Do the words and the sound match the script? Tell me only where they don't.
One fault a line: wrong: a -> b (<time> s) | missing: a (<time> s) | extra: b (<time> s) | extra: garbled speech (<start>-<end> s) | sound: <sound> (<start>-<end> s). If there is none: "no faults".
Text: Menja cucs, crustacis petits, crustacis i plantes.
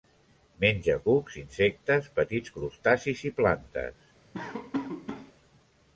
wrong: crustacis -> insectes (1.4 s)
sound: laugh (4.3-5.3 s)